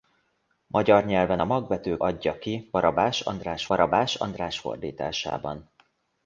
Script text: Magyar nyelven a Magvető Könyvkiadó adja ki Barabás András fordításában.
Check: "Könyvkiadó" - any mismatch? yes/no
yes